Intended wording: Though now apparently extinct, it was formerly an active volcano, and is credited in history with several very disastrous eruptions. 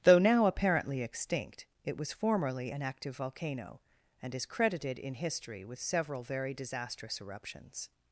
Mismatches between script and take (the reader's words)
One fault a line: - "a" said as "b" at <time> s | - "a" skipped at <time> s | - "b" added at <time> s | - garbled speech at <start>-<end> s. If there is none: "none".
none